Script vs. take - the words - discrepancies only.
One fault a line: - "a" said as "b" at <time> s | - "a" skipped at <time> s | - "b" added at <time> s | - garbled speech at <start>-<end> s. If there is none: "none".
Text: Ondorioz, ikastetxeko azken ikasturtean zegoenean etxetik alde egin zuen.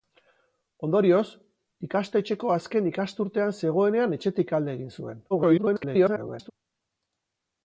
- garbled speech at 5.3-6.5 s